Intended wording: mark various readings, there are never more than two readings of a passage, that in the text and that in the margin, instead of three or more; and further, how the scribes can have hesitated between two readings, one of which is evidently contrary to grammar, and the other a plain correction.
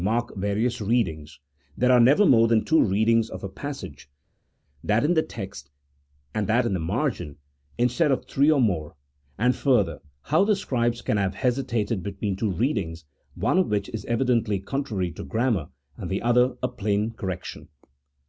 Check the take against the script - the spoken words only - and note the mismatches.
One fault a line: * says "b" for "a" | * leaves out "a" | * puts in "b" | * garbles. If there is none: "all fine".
all fine